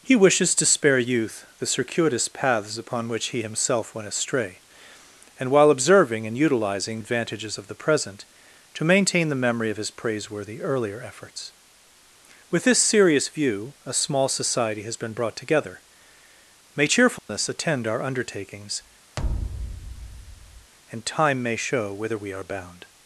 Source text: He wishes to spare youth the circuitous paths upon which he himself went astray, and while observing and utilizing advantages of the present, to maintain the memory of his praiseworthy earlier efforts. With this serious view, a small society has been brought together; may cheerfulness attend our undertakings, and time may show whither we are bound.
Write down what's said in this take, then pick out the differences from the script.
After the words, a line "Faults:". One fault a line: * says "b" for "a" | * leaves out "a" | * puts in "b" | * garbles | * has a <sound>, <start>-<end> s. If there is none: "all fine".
He wishes to spare youth the circuitous paths upon which he himself went astray, and while observing and utilizing advantages of the present, to maintain the memory of his praiseworthy earlier efforts. With this serious view, a small society has been brought together; may cheerfulness attend our undertakings, and time may show whither we are bound.
Faults:
* has a dropout, 17.2-17.3 s
* has a thud, 19.2-20.7 s